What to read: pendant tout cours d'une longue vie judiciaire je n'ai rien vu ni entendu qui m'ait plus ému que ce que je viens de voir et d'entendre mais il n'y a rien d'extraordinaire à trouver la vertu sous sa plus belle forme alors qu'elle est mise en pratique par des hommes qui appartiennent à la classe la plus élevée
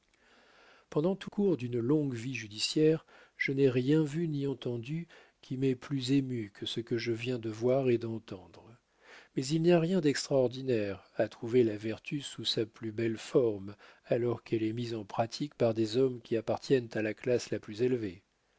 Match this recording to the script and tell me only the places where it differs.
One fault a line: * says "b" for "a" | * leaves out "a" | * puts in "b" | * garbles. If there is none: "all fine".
all fine